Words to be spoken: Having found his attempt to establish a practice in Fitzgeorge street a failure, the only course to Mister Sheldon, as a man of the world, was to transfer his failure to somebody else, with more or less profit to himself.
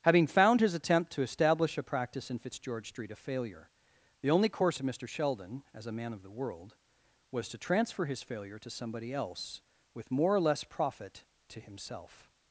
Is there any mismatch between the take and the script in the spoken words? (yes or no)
no